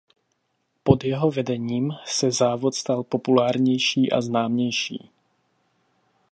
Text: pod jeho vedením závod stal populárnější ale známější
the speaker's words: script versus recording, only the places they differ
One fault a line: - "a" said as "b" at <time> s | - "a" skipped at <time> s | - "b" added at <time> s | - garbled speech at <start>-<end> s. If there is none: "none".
- "se" added at 2.0 s
- "ale" said as "a" at 4.1 s